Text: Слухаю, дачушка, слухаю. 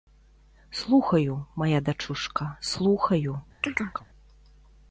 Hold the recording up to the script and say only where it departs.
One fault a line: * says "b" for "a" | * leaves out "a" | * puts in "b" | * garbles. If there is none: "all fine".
* puts in "мая"